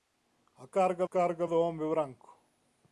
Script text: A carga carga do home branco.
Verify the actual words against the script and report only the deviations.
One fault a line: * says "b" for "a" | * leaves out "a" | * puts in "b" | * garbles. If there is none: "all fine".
all fine